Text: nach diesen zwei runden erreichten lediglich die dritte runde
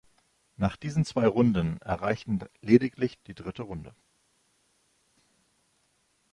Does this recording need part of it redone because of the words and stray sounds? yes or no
no